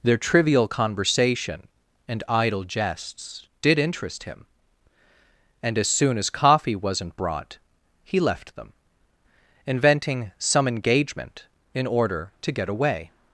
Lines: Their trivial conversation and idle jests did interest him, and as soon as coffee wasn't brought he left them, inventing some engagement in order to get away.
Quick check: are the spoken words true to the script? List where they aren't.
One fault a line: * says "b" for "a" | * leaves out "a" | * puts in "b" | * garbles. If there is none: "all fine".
all fine